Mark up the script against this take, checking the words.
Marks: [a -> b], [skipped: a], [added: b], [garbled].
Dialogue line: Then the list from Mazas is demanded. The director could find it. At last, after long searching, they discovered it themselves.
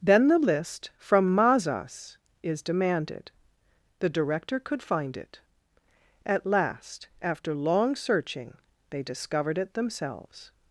Then the list from Mazas is demanded. The director could find it. At last, after long searching, they discovered it themselves.